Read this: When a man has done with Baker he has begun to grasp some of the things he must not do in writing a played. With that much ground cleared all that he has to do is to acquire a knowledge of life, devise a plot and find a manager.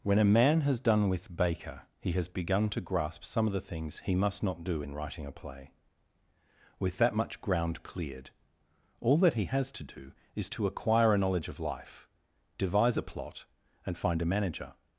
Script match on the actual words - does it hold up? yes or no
no